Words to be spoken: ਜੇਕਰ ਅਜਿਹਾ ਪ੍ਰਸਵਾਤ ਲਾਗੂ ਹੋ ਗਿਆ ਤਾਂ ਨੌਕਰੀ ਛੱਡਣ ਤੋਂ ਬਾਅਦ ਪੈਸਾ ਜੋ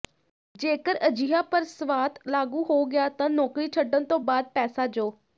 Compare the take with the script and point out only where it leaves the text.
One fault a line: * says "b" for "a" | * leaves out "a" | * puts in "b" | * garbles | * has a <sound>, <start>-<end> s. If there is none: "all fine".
all fine